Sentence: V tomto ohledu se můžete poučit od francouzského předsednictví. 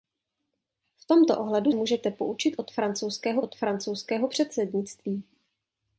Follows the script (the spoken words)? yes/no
no